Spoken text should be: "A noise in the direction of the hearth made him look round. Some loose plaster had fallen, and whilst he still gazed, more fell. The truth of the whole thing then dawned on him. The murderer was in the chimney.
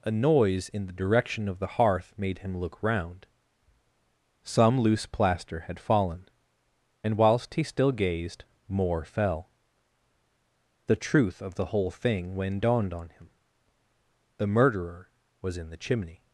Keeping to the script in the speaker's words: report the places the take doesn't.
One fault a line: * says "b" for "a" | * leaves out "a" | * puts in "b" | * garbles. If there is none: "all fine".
* says "when" for "then"